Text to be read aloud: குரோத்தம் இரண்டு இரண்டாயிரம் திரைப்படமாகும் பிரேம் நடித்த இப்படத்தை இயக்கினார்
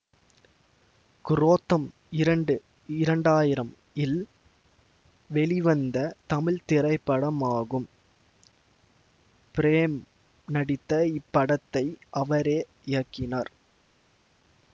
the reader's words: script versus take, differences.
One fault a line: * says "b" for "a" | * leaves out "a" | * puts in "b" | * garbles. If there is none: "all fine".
* puts in "இல் வெளிவந்த தமிழ்"
* puts in "அவரே"